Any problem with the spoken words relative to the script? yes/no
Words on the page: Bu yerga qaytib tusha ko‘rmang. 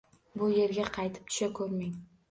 no